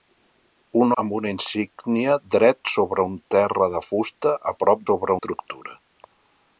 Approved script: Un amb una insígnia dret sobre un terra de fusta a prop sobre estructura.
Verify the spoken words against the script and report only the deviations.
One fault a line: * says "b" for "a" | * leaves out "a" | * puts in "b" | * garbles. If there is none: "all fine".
all fine